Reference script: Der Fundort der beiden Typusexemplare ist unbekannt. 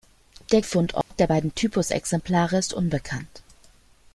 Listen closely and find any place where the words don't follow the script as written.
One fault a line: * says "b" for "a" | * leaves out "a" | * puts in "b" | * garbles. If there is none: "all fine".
all fine